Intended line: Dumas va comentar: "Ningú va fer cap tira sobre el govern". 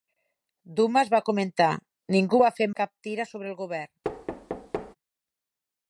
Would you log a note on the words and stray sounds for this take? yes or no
yes